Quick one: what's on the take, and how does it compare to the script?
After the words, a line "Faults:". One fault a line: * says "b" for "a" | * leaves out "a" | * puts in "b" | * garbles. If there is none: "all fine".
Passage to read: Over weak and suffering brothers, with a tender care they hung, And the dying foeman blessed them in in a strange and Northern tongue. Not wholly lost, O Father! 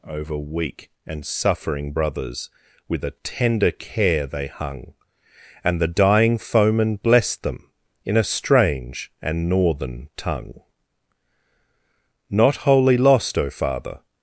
Over weak and suffering brothers, with a tender care they hung, And the dying foeman blessed them in a strange and Northern tongue. Not wholly lost, O Father!
Faults:
* leaves out "in"